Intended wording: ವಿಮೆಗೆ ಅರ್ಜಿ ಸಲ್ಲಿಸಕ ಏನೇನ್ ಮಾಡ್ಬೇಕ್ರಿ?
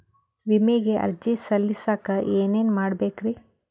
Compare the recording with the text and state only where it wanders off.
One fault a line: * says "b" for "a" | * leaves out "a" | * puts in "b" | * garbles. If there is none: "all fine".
all fine